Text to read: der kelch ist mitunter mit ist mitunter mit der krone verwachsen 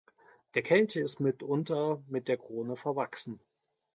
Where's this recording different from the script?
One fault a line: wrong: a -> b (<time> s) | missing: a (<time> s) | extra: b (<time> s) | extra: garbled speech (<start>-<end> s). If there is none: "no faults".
missing: ist mitunter mit (2.3 s)